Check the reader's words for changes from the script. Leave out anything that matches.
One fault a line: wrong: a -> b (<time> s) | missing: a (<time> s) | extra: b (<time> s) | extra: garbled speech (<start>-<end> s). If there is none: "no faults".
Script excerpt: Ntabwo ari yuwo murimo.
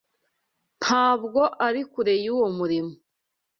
extra: kure (1.9 s)